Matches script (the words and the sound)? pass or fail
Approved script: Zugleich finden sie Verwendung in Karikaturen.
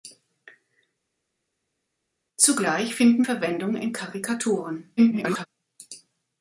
fail